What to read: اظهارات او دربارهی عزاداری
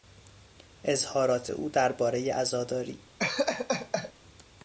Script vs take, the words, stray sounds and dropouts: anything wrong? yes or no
yes